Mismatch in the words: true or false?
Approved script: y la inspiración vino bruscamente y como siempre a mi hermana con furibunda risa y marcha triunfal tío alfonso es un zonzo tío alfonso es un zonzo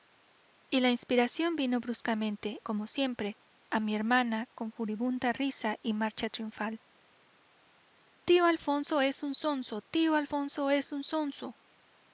true